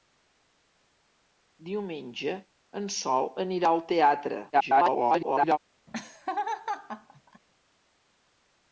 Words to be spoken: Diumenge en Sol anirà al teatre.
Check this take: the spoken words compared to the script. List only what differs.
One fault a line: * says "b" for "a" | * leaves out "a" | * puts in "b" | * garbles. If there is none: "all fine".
* garbles